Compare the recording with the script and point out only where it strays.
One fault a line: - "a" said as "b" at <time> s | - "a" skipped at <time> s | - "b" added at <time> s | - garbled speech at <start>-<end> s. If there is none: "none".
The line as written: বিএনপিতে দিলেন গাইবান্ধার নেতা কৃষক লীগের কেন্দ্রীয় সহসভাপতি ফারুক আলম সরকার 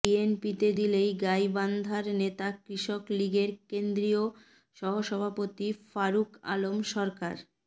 none